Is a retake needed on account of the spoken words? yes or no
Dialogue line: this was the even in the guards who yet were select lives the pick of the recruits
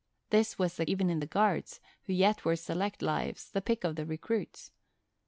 no